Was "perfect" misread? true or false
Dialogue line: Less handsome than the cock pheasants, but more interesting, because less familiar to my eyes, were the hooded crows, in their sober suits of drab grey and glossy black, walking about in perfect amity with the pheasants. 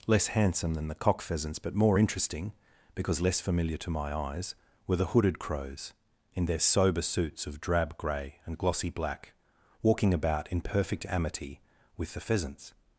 false